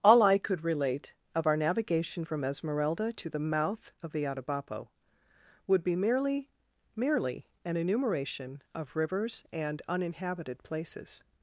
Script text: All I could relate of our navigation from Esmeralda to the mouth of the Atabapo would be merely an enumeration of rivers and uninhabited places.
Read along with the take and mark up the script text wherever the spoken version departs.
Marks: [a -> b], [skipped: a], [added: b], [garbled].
All I could relate of our navigation from Esmeralda to the mouth of the Atabapo would be merely [added: merely] an enumeration of rivers and uninhabited places.